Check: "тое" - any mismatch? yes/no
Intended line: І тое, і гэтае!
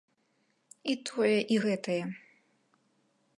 no